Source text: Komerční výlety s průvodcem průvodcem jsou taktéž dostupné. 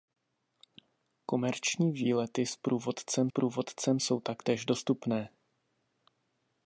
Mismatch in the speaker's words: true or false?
false